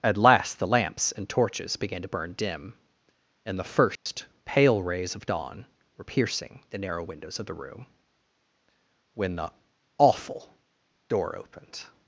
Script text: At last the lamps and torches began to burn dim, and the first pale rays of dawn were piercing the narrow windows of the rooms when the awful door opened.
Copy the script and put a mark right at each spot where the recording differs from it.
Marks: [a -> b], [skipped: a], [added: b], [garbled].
At last the lamps and torches began to burn dim, and the first pale rays of dawn were piercing the narrow windows of the [rooms -> room] when the awful door opened.